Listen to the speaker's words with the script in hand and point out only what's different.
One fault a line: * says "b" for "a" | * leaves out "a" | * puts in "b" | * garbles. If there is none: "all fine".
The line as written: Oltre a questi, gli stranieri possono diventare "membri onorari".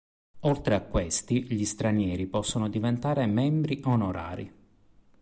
all fine